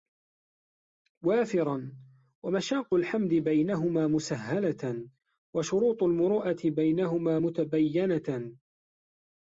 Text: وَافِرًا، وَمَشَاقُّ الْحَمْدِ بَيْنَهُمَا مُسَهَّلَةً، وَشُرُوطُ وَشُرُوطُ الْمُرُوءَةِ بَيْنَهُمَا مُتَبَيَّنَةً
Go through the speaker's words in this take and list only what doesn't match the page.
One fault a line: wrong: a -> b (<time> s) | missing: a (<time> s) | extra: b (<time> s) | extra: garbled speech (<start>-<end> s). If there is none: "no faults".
missing: وَشُرُوطُ (6.0 s)